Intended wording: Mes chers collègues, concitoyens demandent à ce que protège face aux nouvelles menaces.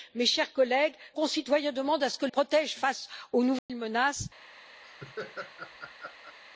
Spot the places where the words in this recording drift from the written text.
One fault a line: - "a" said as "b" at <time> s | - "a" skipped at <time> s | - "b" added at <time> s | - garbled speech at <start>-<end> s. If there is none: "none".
none